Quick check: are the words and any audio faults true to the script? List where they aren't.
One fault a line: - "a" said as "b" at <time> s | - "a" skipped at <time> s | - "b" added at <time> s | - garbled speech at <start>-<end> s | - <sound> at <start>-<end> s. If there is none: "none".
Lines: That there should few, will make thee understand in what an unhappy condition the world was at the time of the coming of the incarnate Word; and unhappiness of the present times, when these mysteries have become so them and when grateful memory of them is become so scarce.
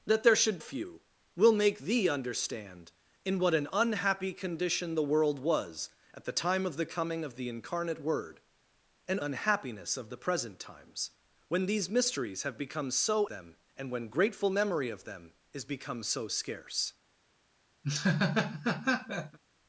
- laugh at 17.8-19.4 s